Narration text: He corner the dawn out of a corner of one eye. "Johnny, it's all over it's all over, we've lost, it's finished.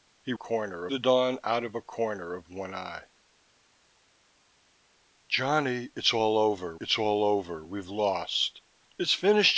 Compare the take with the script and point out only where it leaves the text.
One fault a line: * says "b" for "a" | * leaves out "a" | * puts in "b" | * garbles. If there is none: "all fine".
all fine